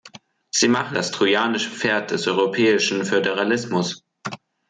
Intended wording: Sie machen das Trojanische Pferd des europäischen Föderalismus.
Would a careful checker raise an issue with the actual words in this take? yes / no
no